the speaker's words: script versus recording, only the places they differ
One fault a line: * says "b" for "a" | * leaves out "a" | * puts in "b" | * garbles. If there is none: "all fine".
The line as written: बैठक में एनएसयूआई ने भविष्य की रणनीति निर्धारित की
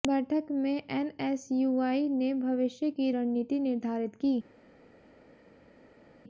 all fine